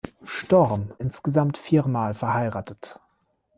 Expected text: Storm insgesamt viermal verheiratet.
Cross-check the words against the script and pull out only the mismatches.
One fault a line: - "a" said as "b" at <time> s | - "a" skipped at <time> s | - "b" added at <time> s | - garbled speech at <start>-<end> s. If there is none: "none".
none